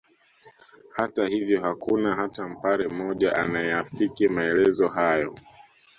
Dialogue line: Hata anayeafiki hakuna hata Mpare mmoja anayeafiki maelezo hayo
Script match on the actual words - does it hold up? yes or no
no